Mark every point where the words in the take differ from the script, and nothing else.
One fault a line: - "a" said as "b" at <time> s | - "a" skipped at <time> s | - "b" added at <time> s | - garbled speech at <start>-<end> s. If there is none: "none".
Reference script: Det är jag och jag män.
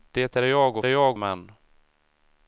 none